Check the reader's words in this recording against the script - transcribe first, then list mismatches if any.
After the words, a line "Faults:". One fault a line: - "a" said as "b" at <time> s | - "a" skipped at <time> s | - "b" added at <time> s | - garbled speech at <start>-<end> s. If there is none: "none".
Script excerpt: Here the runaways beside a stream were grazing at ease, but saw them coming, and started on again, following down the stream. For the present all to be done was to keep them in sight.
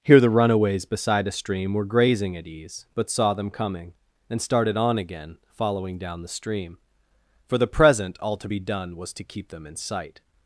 Here the runaways beside a stream were grazing at ease, but saw them coming, and started on again, following down the stream. For the present all to be done was to keep them in sight.
Faults:
none